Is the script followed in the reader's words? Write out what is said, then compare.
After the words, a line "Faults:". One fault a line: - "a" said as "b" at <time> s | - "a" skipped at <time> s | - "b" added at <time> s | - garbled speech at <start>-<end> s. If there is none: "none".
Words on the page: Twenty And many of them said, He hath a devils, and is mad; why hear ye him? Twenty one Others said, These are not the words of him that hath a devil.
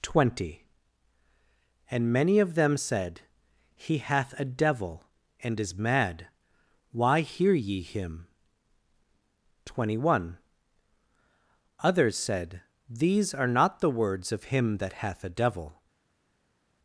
Twenty And many of them said, He hath a devil, and is mad; why hear ye him? Twenty one Others said, These are not the words of him that hath a devil.
Faults:
- "devils" said as "devil" at 4.5 s